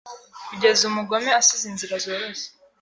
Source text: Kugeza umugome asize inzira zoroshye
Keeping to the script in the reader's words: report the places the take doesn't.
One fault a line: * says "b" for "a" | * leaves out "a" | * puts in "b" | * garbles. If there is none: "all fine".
all fine